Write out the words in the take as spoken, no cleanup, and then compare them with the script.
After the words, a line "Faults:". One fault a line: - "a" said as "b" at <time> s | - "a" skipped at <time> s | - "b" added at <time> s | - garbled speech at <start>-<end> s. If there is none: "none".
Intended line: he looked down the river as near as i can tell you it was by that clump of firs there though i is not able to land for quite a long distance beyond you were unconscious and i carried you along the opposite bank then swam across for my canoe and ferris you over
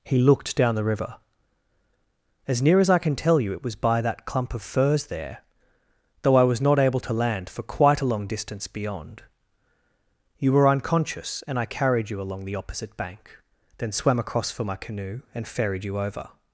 he looked down the river as near as i can tell you it was by that clump of firs there though i was not able to land for quite a long distance beyond you were unconscious and i carried you along the opposite bank then swam across for my canoe and ferried you over
Faults:
- "is" said as "was" at 6.4 s
- "ferris" said as "ferried" at 15.5 s